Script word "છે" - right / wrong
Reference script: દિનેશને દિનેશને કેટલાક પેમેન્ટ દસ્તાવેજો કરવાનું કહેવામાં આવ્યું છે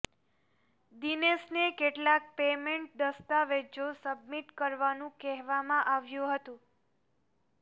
wrong